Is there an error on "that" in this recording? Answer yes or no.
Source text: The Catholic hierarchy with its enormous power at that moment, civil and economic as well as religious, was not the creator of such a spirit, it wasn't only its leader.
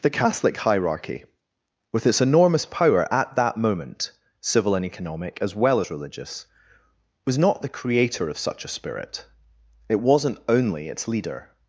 no